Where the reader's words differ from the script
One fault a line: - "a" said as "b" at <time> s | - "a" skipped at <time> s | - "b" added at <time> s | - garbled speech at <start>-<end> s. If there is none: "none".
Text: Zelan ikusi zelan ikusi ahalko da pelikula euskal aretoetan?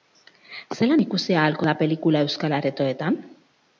- "zelan ikusi" skipped at 1.4 s